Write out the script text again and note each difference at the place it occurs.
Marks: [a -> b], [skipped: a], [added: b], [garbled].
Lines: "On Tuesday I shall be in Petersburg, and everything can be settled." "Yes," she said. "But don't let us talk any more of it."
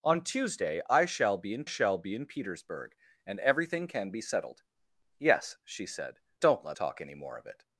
"On Tuesday I shall be in [added: shall be in] Petersburg, and everything can be settled." "Yes," she said. [skipped: "But] don't let [skipped: us] talk any more of it."